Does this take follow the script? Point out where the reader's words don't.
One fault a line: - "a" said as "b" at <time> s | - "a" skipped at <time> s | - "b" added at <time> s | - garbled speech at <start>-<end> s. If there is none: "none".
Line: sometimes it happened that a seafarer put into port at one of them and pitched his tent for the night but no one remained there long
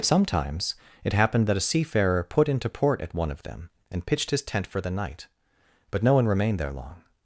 none